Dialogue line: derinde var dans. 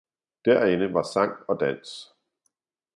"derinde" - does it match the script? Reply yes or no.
yes